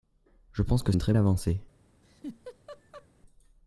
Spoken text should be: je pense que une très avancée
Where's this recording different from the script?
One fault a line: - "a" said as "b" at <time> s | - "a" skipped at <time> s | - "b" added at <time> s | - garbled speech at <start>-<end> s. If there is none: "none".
none